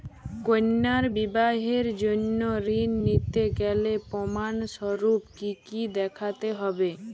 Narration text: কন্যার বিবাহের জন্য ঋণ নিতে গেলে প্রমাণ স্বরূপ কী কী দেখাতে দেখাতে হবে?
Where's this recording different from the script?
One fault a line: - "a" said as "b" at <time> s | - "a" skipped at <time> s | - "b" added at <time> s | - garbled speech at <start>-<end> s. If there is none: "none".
- "দেখাতে" skipped at 6.5 s